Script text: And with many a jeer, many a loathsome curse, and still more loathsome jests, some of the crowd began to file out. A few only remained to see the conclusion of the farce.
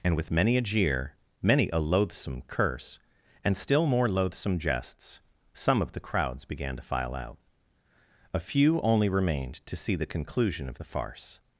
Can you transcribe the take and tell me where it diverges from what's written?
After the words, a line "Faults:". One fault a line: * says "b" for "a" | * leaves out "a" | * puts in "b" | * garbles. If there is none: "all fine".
And with many a jeer, many a loathsome curse, and still more loathsome jests, some of the crowds began to file out. A few only remained to see the conclusion of the farce.
Faults:
* says "crowds" for "crowd"